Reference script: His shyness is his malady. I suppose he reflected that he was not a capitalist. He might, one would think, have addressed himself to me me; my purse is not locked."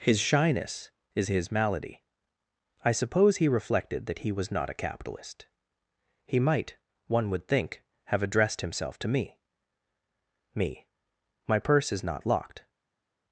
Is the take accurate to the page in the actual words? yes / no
yes